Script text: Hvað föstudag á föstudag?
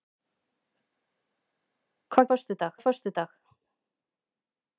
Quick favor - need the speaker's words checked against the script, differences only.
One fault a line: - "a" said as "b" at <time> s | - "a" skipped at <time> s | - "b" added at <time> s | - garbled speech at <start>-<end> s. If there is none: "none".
none